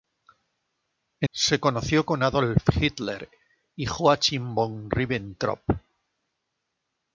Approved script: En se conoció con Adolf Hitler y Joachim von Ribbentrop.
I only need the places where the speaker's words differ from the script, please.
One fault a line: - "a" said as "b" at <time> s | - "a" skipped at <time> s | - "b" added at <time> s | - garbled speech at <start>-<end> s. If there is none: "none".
none